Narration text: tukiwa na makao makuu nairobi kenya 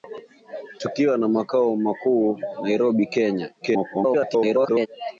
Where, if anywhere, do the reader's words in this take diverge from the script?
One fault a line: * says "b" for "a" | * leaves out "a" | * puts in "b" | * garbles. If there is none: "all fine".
* garbles